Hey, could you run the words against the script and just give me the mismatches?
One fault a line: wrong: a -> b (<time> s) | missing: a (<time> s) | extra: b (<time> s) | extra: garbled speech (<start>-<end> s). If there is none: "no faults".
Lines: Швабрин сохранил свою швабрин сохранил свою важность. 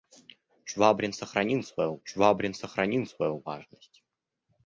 no faults